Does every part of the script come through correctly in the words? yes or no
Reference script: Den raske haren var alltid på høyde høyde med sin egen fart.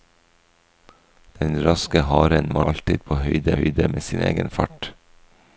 yes